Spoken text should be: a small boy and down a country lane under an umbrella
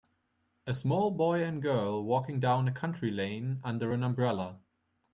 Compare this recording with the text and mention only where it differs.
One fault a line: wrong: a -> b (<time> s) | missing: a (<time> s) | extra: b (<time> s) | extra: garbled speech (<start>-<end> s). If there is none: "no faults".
extra: girl walking (1.6 s)